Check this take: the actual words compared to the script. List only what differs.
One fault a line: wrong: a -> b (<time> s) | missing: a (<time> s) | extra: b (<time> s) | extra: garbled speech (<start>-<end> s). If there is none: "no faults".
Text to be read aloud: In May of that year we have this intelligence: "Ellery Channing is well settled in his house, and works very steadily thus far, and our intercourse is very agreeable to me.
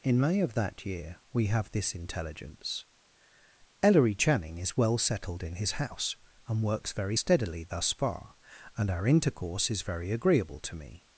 no faults